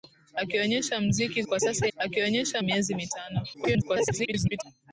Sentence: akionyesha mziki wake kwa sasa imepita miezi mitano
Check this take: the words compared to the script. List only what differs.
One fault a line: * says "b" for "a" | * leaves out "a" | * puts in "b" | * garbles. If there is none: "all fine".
* leaves out "wake"
* says "akionyesha" for "imepita"
* garbles